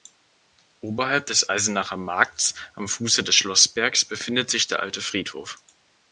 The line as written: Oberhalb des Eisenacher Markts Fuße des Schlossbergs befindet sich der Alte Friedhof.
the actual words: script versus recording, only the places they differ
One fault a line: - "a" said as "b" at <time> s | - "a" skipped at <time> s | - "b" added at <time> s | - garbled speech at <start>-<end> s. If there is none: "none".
- "am" added at 2.7 s